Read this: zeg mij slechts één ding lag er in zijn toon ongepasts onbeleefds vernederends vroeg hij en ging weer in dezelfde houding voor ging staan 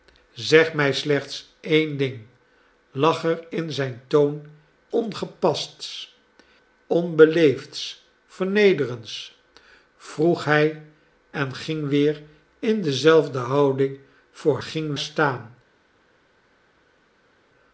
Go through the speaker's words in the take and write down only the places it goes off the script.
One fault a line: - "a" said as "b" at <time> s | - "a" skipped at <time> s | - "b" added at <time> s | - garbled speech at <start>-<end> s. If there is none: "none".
none